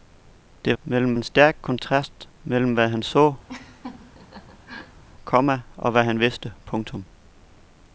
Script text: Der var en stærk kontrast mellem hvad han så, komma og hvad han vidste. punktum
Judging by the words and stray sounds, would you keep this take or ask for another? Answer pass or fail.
fail